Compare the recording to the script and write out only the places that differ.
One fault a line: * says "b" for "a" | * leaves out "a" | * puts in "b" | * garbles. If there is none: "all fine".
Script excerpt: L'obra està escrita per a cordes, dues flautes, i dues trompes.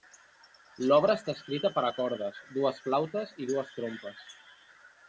all fine